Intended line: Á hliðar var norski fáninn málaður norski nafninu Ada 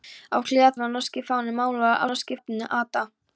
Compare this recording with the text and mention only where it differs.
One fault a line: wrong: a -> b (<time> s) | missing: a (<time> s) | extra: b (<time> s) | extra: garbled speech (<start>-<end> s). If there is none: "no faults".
no faults